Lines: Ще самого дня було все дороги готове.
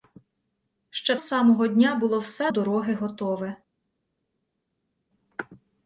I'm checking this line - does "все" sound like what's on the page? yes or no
yes